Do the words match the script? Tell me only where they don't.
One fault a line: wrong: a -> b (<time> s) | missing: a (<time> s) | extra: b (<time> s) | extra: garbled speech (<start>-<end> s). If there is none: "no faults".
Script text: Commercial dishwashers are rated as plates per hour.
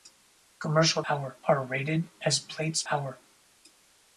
wrong: dishwashers -> hour (1.1 s)
missing: per (2.8 s)